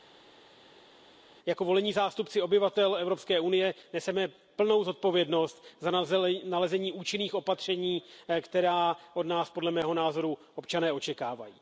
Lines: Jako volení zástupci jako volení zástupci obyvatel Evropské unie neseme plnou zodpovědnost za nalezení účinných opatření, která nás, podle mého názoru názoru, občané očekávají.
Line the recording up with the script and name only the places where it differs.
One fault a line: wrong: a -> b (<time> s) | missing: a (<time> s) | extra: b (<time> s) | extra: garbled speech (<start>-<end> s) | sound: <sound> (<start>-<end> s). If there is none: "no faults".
missing: jako volení zástupci (2.4 s)
extra: od (9.1 s)
missing: názoru (10.4 s)